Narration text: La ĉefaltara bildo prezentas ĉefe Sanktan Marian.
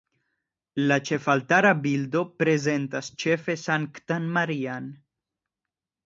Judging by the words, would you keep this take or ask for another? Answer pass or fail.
pass